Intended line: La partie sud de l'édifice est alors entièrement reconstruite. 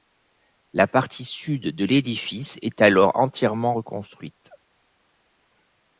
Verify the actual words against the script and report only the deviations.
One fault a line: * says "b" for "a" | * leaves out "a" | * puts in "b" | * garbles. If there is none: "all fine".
all fine